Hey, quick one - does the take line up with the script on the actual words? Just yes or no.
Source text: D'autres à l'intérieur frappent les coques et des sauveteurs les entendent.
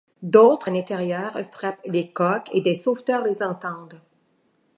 yes